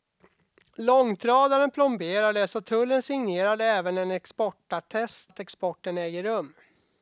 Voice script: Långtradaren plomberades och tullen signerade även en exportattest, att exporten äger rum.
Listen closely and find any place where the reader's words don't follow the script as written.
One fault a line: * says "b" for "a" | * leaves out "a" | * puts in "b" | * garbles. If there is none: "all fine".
all fine